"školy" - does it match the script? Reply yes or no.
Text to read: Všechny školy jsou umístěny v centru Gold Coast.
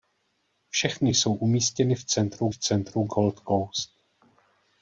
no